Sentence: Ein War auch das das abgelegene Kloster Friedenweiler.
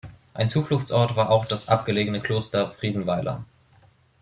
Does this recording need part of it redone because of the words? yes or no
yes